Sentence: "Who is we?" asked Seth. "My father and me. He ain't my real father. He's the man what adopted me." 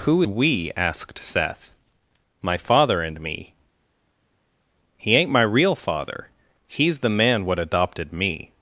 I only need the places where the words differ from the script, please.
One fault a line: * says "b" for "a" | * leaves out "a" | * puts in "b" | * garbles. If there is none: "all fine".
* leaves out "is"